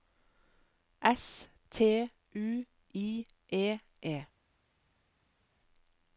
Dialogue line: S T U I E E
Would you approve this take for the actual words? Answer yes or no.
yes